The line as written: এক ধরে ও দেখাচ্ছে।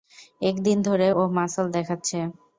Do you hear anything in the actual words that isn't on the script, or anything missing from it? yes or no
yes